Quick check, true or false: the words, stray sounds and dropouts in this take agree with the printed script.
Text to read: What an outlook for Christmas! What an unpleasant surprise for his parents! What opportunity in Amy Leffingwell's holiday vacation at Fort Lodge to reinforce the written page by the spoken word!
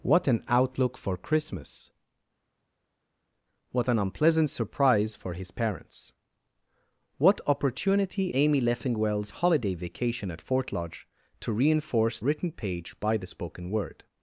false